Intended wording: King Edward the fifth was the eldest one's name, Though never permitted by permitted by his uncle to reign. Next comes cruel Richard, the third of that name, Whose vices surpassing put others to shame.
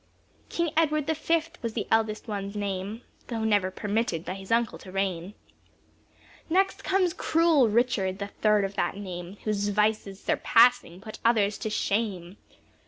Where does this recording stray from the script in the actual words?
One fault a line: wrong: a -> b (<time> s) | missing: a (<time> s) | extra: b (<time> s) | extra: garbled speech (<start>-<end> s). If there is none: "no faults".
missing: permitted by (4.3 s)